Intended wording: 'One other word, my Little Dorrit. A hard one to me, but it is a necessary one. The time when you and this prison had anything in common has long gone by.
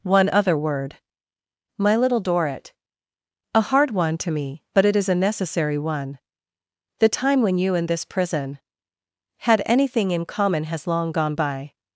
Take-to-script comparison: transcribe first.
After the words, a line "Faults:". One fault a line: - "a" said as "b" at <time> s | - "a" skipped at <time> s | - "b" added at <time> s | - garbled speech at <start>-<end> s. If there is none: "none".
'One other word, my Little Dorrit. A hard one to me, but it is a necessary one. The time when you and this prison had anything in common has long gone by.
Faults:
none